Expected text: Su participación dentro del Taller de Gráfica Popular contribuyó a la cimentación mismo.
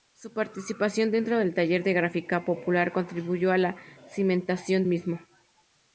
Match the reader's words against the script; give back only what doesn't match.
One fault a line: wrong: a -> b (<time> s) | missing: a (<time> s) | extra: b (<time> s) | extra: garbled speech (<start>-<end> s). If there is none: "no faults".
no faults